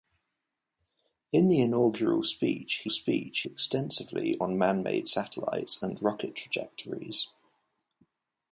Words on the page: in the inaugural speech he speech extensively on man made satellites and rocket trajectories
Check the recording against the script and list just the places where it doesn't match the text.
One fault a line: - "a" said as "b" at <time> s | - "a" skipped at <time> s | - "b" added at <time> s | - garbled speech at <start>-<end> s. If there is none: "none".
none